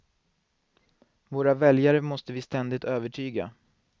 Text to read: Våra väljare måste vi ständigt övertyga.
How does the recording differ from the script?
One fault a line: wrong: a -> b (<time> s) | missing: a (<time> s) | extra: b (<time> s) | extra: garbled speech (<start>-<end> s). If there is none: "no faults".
no faults